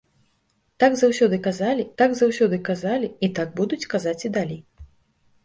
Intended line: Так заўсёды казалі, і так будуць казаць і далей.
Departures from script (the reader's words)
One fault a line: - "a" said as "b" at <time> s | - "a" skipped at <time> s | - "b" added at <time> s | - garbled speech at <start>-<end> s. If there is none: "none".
- "так заўсёды казалі" added at 2.0 s